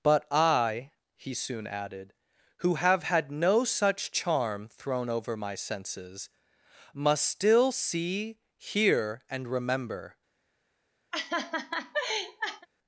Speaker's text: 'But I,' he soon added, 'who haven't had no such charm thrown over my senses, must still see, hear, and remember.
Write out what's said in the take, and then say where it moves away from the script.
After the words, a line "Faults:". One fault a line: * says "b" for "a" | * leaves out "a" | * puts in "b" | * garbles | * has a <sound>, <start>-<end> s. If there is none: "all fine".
'But I,' he soon added, 'who have had no such charm thrown over my senses, must still see, hear, and remember.
Faults:
* says "have" for "haven't"
* has a laugh, 11.1-12.7 s